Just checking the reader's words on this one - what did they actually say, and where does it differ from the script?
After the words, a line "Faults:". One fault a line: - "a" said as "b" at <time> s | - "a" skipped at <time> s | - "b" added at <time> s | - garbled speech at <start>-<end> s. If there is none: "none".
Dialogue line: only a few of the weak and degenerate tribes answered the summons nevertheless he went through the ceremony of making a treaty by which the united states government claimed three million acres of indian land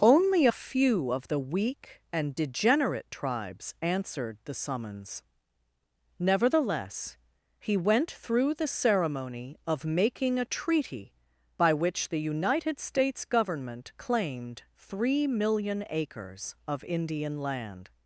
only a few of the weak and degenerate tribes answered the summons nevertheless he went through the ceremony of making a treaty by which the united states government claimed three million acres of indian land
Faults:
none